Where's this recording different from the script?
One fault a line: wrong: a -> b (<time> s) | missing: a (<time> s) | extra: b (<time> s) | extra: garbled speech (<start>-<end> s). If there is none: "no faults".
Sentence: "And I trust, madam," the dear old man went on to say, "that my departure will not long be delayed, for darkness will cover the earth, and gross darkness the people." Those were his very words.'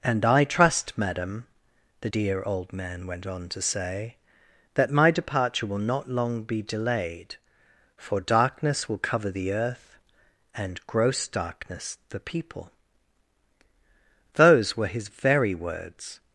no faults